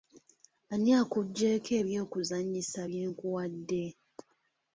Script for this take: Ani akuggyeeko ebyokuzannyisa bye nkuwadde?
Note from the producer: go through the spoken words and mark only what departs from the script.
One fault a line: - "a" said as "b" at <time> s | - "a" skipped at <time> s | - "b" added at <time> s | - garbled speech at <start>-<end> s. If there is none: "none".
none